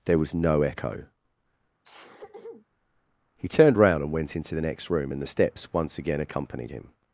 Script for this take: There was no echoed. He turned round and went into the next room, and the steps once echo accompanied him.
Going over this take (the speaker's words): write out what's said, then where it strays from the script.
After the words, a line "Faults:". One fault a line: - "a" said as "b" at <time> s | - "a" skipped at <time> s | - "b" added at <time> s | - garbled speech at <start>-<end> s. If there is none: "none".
There was no echo. He turned round and went into the next room, and the steps once again accompanied him.
Faults:
- "echoed" said as "echo" at 0.6 s
- "echo" said as "again" at 6.0 s